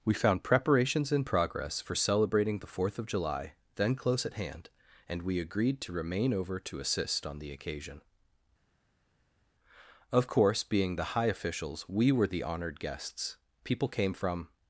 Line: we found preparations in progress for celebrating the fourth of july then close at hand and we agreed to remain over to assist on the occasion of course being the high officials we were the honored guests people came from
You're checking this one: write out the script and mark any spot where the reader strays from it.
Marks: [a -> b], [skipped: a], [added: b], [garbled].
we found preparations in progress for celebrating the fourth of july then close at hand and we agreed to remain over to assist on the occasion of course being the high officials we were the honored guests people came from